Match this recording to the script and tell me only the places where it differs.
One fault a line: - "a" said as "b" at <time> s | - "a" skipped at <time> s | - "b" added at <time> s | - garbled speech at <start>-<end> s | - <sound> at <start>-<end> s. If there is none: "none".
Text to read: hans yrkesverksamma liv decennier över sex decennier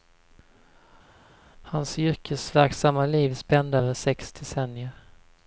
- "decennier" said as "spände" at 3.3 s